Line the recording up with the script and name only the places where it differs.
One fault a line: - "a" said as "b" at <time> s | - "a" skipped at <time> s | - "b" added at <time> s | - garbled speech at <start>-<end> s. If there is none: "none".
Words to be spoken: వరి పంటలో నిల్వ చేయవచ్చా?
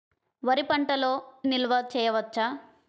none